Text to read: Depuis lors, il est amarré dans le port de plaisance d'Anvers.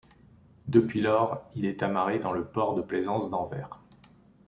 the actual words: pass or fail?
pass